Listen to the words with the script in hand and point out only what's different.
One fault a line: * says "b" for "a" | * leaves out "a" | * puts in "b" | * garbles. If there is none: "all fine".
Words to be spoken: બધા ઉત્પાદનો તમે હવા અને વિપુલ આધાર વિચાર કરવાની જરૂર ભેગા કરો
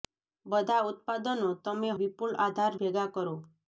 * leaves out "હવા અને"
* leaves out "વિચાર કરવાની જરૂર"